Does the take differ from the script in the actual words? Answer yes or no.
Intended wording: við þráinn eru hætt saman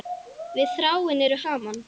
yes